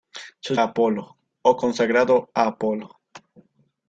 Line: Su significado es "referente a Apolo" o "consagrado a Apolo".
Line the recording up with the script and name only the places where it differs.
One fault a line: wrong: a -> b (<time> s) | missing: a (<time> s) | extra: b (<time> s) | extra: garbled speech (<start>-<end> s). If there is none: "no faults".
missing: significado es referente (0.6 s)